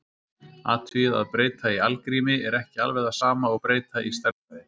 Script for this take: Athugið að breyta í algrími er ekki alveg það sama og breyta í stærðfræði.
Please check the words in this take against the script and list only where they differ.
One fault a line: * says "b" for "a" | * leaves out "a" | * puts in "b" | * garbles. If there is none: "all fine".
all fine